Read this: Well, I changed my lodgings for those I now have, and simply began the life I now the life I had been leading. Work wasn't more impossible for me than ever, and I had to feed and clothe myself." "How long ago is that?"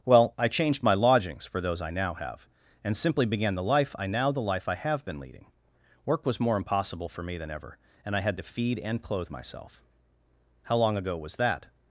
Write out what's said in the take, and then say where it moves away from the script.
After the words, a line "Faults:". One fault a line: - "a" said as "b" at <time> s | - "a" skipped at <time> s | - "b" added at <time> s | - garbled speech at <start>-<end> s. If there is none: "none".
Well, I changed my lodgings for those I now have, and simply began the life I now the life I have been leading. Work was more impossible for me than ever, and I had to feed and clothe myself." "How long ago was that?"
Faults:
- "had" said as "have" at 4.7 s
- "wasn't" said as "was" at 6.2 s
- "is" said as "was" at 11.2 s